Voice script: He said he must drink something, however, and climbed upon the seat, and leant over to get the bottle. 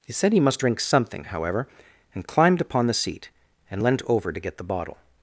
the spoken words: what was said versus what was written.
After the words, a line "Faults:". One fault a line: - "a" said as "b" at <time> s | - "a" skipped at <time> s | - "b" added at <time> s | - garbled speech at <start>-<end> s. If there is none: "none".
He said he must drink something, however, and climbed upon the seat, and leant over to get the bottle.
Faults:
none